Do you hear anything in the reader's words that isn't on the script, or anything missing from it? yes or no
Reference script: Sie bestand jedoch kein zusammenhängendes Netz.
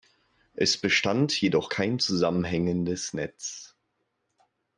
yes